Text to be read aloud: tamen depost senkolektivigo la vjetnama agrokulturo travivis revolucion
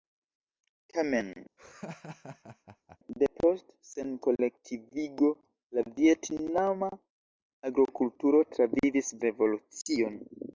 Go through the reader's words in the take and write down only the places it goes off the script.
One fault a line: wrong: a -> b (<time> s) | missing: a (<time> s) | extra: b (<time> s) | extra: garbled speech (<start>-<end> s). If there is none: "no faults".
no faults